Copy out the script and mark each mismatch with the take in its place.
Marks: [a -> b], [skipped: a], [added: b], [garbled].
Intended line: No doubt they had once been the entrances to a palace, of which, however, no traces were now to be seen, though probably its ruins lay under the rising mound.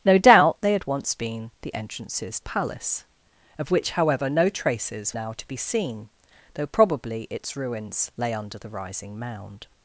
No doubt they had once been the entrances [skipped: to] a palace, of which, however, no traces [skipped: were] now to be seen, though probably its ruins lay under the rising mound.